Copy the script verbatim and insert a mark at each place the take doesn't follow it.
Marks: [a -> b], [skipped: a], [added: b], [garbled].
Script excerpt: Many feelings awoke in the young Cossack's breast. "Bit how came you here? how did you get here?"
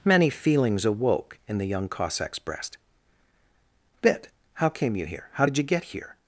Many feelings awoke in the young Cossack's breast. "Bit how came you here? how did you get here?"